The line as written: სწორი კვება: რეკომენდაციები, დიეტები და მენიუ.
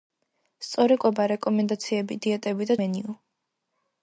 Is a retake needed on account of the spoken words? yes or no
no